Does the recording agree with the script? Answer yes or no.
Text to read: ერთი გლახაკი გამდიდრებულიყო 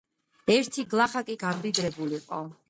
yes